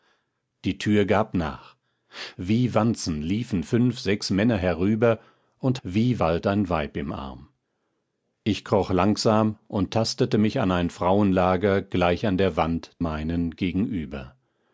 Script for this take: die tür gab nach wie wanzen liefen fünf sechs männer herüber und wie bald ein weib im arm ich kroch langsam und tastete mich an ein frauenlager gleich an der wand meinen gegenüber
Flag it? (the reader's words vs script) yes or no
no